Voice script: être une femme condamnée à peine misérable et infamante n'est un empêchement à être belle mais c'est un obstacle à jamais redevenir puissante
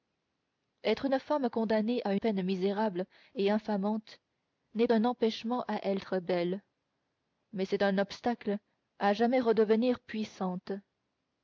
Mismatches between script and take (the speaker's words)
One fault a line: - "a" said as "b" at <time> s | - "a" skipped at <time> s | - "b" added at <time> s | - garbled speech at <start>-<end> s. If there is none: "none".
none